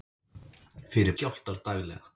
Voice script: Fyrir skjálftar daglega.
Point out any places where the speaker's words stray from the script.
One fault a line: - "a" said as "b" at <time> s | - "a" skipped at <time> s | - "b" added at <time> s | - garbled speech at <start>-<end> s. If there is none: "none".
none